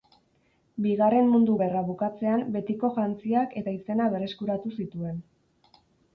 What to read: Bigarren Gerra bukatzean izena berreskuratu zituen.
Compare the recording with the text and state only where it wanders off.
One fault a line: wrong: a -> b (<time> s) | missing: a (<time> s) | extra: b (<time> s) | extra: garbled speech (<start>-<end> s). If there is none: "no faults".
extra: Mundu (1.3 s)
extra: betiko jantziak eta (2.6 s)